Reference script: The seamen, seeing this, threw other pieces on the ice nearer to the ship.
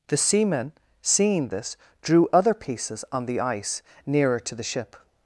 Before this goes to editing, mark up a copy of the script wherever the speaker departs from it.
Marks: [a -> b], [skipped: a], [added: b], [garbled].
The seamen, seeing this, [threw -> drew] other pieces on the ice nearer to the ship.